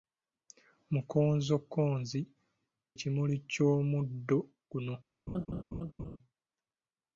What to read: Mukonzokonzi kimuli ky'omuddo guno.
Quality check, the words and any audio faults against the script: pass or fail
fail